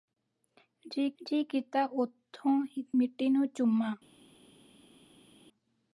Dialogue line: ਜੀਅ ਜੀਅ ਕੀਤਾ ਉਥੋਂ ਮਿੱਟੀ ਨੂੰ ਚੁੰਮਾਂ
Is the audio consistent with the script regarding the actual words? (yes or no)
yes